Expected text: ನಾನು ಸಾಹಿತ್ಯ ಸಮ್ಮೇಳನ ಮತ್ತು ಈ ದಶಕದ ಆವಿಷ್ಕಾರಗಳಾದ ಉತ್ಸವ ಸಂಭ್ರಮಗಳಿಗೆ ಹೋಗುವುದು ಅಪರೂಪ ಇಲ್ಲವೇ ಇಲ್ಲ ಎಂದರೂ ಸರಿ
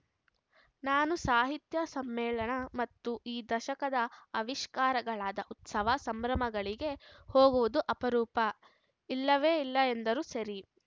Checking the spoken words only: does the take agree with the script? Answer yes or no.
yes